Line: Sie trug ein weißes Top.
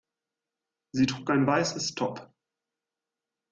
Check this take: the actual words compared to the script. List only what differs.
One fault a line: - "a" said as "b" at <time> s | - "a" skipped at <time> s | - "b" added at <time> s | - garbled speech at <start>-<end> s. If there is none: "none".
none